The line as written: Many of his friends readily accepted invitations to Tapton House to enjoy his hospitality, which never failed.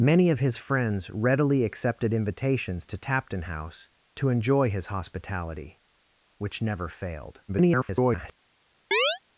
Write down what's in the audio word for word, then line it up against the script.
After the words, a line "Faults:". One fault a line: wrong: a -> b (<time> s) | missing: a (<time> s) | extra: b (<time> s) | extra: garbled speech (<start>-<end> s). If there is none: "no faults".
Many of his friends readily accepted invitations to Tapton House to enjoy his hospitality, which never failed. [garbled]
Faults:
extra: garbled speech (7.5-8.3 s)